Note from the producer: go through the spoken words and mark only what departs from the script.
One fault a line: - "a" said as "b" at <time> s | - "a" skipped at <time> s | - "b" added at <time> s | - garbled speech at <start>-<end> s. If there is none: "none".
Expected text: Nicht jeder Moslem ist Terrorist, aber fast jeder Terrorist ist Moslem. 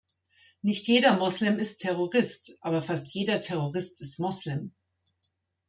none